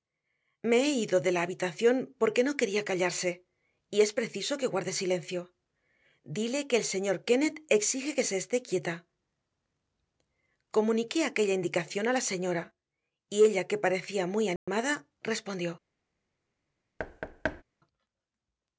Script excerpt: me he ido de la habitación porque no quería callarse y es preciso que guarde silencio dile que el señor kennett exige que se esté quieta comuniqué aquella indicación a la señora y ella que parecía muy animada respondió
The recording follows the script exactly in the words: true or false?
true